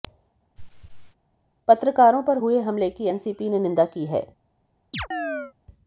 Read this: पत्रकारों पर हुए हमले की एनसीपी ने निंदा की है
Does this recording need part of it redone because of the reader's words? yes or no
no